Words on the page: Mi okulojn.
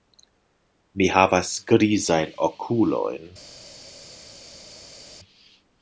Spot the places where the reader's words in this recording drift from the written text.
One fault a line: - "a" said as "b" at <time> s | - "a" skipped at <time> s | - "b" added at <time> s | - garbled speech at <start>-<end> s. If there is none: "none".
- "havas grizajn" added at 1.1 s